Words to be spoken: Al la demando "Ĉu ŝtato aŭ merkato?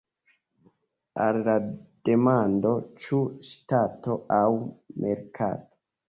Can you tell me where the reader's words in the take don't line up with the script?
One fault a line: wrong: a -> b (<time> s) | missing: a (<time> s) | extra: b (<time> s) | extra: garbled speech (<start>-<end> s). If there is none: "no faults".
no faults